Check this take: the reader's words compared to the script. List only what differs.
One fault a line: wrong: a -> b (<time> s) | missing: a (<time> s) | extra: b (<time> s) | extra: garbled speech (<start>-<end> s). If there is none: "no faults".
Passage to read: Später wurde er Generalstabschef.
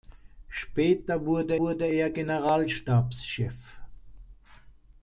extra: wurde (1.6 s)